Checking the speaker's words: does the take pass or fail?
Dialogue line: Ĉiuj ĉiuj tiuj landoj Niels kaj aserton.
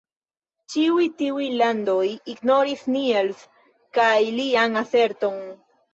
fail